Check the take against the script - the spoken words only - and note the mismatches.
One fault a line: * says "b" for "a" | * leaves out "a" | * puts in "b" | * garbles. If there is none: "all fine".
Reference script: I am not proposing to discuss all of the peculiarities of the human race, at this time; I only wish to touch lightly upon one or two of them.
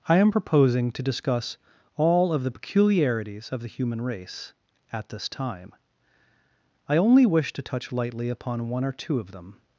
* leaves out "not"